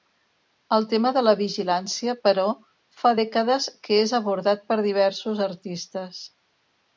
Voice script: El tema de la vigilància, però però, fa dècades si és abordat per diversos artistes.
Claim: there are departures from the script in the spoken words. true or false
true